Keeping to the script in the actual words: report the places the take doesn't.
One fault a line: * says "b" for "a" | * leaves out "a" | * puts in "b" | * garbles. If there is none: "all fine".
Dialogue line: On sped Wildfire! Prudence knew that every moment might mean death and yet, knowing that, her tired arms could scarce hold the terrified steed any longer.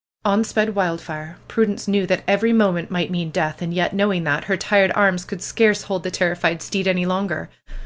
all fine